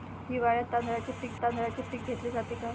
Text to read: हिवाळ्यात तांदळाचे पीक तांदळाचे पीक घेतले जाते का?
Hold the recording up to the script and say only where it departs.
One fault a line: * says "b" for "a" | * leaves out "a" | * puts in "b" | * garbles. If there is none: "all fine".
all fine